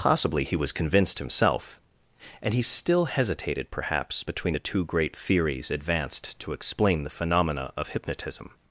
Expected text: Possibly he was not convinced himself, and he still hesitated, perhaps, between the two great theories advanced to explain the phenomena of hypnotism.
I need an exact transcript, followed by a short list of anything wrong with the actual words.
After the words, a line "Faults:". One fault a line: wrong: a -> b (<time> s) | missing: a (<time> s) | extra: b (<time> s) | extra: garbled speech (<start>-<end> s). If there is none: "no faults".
Possibly he was convinced himself, and he still hesitated, perhaps, between the two great theories advanced to explain the phenomena of hypnotism.
Faults:
missing: not (0.7 s)